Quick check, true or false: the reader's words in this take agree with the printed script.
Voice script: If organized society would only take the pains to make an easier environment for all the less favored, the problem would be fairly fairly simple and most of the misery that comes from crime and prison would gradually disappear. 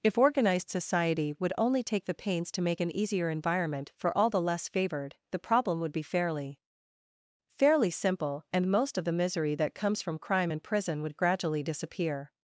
true